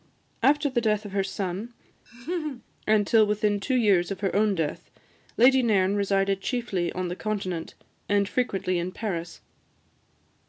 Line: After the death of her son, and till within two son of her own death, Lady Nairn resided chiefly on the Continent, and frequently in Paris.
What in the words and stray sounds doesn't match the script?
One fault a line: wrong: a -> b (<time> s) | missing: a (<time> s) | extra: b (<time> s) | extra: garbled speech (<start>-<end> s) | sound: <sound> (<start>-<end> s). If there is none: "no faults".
sound: laugh (2.1-2.6 s)
wrong: son -> years (3.8 s)